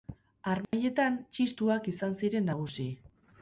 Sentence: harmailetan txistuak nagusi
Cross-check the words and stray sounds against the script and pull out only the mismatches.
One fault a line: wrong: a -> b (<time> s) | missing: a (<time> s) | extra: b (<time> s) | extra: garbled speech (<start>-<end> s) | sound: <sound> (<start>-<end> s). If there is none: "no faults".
sound: dropout (0.6-0.7 s)
extra: izan ziren (1.9 s)